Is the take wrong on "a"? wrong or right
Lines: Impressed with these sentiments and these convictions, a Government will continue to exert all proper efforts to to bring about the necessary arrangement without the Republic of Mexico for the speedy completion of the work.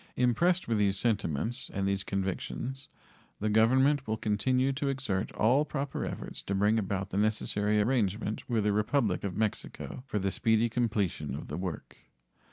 wrong